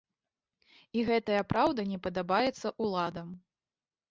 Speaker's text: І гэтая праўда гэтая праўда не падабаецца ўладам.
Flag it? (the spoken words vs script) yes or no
yes